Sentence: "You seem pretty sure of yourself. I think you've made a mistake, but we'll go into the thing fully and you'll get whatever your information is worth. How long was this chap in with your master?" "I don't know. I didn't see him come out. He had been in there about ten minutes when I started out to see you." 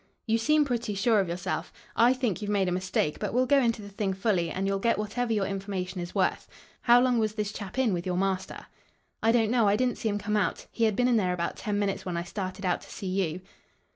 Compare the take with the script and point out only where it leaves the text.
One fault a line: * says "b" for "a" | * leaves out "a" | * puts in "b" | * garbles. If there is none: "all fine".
all fine